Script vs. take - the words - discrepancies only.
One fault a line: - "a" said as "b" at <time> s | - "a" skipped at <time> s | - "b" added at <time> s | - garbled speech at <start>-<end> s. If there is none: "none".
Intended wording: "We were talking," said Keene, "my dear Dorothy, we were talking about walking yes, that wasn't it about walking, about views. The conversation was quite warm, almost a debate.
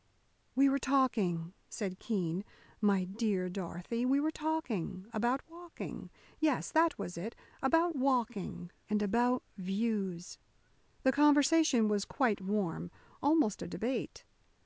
- "wasn't" said as "was" at 7.0 s
- "and" added at 8.9 s